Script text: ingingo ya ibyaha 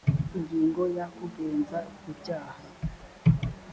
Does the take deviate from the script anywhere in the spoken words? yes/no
yes